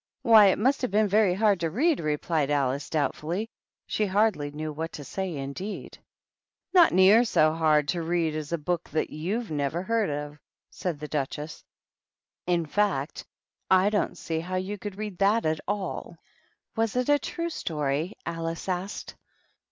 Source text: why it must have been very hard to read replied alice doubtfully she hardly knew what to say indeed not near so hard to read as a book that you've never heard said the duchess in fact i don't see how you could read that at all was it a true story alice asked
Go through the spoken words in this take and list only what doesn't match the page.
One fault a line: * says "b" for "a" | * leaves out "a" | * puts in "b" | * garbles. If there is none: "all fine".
* puts in "of"